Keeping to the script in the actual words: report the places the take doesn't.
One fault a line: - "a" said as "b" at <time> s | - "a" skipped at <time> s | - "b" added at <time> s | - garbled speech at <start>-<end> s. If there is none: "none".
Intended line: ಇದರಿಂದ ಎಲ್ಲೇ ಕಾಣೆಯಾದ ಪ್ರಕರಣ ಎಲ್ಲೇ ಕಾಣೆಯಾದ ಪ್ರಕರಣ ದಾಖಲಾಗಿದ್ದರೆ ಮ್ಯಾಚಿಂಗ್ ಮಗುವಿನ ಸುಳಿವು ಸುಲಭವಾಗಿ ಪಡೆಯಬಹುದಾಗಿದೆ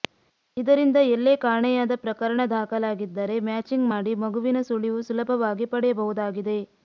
- "ಎಲ್ಲೇ ಕಾಣೆಯಾದ ಪ್ರಕರಣ" skipped at 2.4 s
- "ಮಾಡಿ" added at 3.9 s